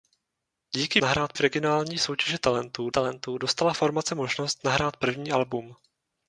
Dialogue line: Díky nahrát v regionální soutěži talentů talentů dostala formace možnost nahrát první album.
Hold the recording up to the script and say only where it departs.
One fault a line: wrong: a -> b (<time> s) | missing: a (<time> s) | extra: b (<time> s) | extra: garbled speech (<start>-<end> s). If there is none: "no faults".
no faults